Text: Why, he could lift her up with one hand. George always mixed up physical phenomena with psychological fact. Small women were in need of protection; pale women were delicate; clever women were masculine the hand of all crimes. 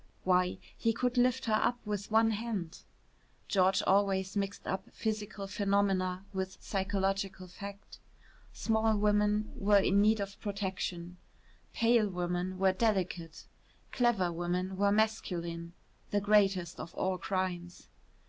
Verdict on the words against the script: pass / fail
fail